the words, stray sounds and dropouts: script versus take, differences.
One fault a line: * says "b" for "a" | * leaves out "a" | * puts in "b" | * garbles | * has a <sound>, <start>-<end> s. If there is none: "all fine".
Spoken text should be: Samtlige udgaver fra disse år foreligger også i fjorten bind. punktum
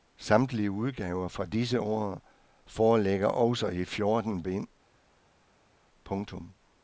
all fine